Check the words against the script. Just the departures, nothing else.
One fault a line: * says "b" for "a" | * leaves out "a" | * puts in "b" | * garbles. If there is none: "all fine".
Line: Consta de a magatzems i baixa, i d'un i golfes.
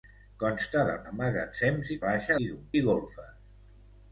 all fine